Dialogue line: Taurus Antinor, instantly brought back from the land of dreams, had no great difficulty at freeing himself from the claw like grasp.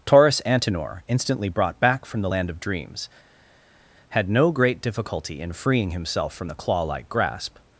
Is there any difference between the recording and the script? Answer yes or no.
yes